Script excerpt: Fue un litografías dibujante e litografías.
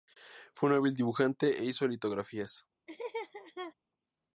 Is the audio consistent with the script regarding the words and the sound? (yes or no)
no